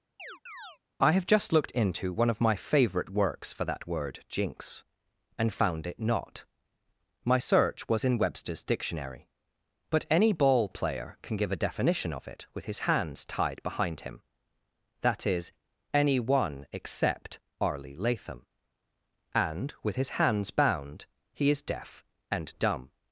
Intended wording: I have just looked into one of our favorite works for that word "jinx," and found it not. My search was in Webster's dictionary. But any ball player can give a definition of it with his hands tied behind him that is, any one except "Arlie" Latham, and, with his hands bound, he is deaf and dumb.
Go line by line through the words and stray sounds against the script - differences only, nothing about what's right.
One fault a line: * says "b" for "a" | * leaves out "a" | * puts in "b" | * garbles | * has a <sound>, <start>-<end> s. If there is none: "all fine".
* has a chirp, 0.2-0.8 s
* says "my" for "our"